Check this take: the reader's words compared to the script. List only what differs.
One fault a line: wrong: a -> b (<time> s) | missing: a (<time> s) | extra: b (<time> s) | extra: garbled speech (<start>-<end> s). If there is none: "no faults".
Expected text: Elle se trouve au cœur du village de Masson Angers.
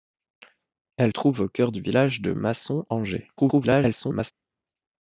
missing: se (1.1 s)
extra: garbled speech (3.4-4.3 s)